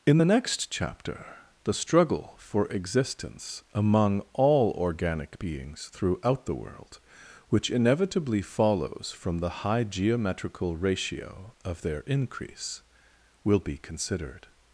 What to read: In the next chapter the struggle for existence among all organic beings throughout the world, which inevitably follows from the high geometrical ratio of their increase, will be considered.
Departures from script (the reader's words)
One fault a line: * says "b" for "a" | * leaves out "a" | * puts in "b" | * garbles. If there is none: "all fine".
all fine